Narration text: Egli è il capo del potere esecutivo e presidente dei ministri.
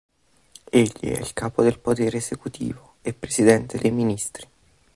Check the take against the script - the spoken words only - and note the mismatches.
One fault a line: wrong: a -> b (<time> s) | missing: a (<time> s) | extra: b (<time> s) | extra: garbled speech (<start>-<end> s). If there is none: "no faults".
no faults